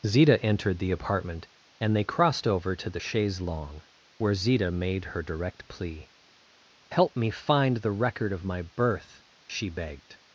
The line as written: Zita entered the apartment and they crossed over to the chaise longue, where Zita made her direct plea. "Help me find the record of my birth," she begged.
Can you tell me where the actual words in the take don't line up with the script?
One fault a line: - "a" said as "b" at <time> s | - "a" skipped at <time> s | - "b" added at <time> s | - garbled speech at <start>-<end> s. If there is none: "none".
none